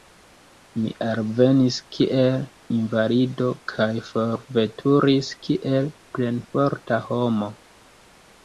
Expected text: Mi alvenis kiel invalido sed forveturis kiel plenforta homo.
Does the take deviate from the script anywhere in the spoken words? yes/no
yes